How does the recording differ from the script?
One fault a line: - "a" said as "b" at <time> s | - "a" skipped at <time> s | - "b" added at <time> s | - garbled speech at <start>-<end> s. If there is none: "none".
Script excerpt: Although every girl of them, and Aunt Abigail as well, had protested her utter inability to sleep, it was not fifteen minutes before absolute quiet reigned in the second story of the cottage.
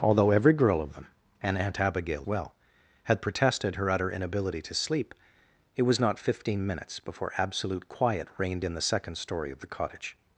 - "as" skipped at 2.3 s